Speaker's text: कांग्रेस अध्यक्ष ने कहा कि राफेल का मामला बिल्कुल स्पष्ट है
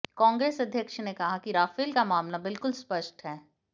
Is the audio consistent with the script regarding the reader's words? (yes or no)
yes